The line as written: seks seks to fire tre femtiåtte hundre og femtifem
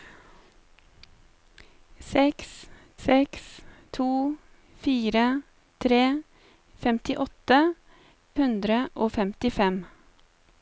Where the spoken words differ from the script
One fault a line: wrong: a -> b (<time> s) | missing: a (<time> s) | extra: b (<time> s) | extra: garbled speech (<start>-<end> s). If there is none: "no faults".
no faults